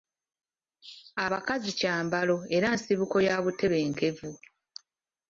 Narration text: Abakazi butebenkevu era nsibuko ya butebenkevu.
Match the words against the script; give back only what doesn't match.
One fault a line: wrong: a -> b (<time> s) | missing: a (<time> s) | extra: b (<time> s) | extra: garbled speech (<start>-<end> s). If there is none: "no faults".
wrong: butebenkevu -> kyambalo (1.8 s)